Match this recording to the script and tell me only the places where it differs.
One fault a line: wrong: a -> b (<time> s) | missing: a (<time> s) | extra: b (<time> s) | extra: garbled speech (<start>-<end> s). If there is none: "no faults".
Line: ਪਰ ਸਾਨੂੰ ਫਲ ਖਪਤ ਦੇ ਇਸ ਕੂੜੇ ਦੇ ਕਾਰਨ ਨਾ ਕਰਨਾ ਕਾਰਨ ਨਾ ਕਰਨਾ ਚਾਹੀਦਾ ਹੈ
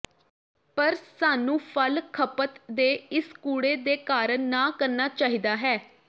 missing: ਕਾਰਨ ਨਾ ਕਰਨਾ (5.1 s)